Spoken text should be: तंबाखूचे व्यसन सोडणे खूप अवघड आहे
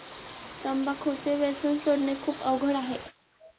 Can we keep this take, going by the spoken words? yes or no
yes